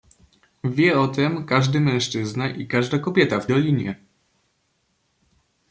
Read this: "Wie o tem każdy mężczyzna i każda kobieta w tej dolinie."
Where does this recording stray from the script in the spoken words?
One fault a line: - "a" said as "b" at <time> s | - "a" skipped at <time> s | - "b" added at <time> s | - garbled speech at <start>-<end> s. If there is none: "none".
- "tej" skipped at 3.5 s